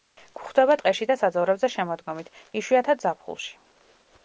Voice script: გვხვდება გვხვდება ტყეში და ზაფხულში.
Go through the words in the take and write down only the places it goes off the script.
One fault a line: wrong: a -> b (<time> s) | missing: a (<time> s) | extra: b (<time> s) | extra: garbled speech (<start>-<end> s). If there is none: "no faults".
missing: გვხვდება (0.8 s)
extra: საძოვრებზე შემოდგომით იშვიათად (1.2 s)